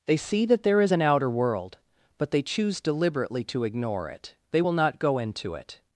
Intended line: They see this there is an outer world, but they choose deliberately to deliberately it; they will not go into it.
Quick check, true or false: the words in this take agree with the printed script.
false